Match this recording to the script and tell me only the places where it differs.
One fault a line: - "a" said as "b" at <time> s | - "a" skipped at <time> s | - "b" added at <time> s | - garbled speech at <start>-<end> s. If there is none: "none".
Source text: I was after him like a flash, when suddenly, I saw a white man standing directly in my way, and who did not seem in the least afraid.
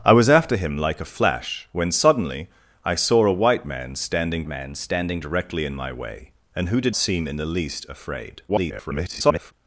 - "man standing" added at 4.5 s
- "not" skipped at 6.9 s
- garbled speech at 8.5-9.5 s